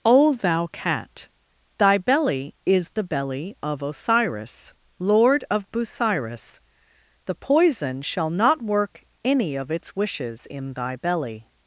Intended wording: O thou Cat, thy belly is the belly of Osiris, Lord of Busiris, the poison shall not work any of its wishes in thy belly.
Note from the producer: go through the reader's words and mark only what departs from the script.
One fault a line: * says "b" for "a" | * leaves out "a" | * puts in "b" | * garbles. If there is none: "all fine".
all fine